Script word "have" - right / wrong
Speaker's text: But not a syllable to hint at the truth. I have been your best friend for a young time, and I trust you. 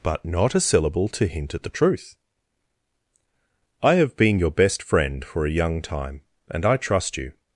right